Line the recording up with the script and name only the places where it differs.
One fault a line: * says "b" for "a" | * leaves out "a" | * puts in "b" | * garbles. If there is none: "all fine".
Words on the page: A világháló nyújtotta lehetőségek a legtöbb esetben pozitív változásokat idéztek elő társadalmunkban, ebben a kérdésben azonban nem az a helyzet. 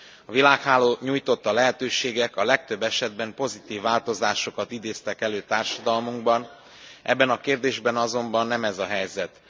* says "ez" for "az"